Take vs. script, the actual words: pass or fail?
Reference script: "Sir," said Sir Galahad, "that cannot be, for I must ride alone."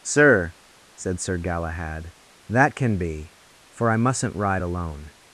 fail